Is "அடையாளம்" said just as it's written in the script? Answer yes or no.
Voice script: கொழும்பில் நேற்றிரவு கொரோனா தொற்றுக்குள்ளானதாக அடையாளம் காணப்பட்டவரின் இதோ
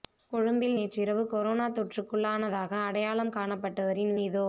yes